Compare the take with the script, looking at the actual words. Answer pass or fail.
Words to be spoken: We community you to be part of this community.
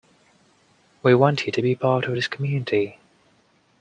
fail